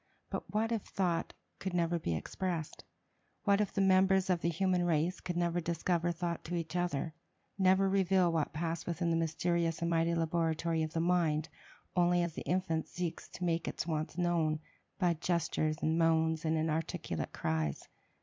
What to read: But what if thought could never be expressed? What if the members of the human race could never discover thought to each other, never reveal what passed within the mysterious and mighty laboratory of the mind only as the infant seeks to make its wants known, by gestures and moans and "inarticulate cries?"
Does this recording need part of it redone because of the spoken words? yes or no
no